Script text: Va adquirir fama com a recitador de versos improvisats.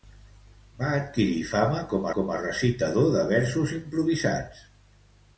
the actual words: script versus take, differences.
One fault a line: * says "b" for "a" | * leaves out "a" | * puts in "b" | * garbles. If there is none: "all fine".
* puts in "com"